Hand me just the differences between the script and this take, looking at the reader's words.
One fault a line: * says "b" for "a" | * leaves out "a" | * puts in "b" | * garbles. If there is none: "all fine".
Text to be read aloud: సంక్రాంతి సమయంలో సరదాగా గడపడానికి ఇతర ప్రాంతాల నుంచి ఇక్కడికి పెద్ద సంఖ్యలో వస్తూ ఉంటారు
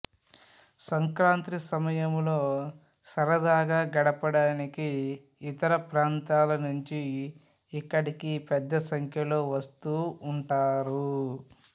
all fine